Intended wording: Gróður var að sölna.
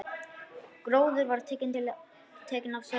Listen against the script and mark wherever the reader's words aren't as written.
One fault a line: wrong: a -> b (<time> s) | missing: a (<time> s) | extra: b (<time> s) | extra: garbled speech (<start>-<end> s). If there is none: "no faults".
extra: tekinn (1.5 s)